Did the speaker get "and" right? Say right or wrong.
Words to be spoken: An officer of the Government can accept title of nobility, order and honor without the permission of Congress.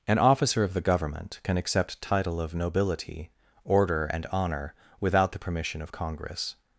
right